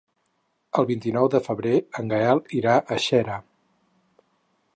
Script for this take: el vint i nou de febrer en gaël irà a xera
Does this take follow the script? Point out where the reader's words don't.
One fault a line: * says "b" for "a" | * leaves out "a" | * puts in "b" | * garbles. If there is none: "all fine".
all fine